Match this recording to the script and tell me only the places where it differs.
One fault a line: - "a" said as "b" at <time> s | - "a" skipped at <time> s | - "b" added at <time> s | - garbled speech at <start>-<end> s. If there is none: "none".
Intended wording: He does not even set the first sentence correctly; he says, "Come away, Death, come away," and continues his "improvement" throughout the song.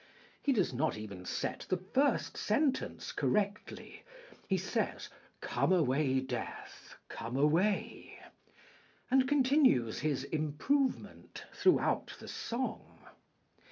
none